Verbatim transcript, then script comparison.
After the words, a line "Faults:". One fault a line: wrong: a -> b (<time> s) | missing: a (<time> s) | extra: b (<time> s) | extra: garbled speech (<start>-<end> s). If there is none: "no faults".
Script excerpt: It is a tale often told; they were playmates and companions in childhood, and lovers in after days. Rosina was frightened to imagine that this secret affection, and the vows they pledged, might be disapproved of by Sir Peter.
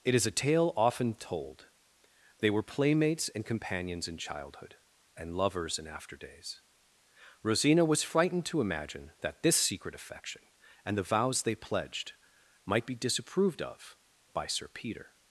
It is a tale often told; they were playmates and companions in childhood, and lovers in after days. Rosina was frightened to imagine that this secret affection, and the vows they pledged, might be disapproved of by Sir Peter.
Faults:
no faults